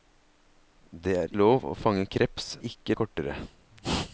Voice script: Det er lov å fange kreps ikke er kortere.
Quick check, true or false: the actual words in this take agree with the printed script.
true